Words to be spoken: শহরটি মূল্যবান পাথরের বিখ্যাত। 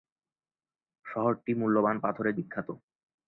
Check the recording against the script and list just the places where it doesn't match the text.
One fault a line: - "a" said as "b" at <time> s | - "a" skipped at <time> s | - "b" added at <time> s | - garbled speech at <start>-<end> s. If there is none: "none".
none